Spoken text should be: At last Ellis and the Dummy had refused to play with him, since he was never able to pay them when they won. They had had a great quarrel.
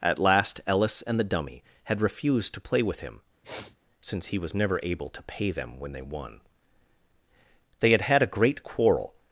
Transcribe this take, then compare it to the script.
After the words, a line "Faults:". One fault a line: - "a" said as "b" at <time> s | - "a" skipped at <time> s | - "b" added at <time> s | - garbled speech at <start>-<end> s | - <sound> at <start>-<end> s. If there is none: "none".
At last Ellis and the Dummy had refused to play with him, since he was never able to pay them when they won. They had had a great quarrel.
Faults:
- sniff at 3.4-3.8 s